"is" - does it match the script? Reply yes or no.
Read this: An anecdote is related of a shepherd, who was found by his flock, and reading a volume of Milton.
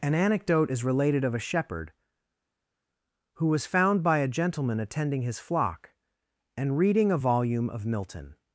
yes